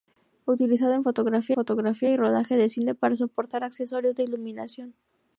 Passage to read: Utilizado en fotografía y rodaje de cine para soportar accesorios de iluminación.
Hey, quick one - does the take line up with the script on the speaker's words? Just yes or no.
no